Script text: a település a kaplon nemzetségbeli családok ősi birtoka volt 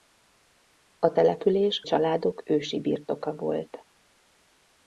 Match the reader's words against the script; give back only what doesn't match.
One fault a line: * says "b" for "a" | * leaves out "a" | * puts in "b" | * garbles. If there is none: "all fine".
* leaves out "a kaplon nemzetségbeli"